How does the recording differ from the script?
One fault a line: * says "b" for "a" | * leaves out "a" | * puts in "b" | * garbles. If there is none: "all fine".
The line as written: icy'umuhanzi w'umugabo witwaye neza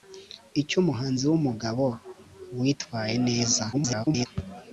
* garbles